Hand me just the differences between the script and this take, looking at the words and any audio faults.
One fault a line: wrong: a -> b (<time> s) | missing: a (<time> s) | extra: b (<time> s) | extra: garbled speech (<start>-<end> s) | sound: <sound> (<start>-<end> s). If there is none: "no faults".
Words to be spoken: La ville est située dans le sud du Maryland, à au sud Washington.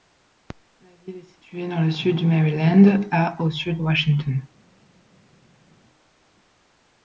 no faults